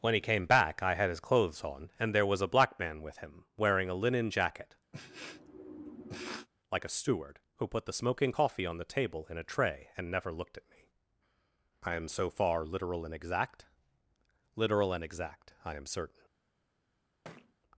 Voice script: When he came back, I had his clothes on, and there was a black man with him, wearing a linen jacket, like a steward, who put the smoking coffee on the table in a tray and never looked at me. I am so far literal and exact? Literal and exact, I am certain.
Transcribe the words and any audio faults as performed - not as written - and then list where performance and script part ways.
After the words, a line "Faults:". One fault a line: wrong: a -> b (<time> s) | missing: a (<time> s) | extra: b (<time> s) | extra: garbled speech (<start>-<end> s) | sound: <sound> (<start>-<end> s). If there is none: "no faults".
When he came back, I had his clothes on, and there was a black man with him, wearing a linen jacket, like a steward, who put the smoking coffee on the table in a tray and never looked at me. I am so far literal and exact? Literal and exact, I am certain.
Faults:
sound: sniff (4.9-6.5 s)
sound: thud (17.2-17.5 s)